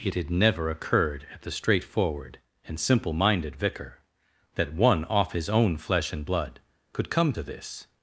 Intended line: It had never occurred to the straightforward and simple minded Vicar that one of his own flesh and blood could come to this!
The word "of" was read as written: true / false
false